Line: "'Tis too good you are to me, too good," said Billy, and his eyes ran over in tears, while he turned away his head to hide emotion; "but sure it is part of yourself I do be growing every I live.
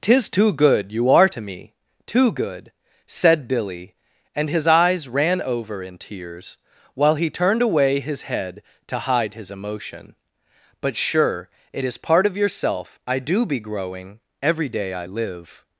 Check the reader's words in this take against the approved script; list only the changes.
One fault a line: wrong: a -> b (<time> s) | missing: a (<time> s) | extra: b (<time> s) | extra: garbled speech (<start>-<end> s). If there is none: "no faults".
extra: his (9.3 s)
extra: day (14.7 s)